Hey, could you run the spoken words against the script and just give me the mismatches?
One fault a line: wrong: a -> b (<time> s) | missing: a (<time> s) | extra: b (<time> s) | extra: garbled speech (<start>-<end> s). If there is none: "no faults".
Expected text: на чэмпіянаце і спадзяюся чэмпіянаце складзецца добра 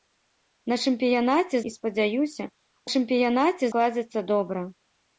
no faults